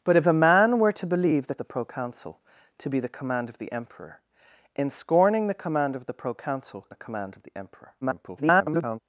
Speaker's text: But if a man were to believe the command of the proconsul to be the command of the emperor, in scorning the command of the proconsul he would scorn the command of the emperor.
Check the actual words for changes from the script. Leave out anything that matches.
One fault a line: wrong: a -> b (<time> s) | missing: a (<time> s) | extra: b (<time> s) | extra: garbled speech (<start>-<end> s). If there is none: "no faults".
missing: command of (1.6 s)
missing: he would scorn (6.9 s)
extra: garbled speech (8.0-9.0 s)